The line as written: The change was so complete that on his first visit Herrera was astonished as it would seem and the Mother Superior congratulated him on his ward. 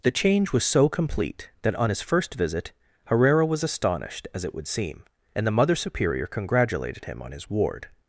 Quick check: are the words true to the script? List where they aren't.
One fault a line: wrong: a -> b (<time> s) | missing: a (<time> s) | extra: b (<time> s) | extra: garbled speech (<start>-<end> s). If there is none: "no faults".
no faults